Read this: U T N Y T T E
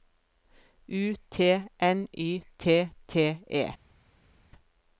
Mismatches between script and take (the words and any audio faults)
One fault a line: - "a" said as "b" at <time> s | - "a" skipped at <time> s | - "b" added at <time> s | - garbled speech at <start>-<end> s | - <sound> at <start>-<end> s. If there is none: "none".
none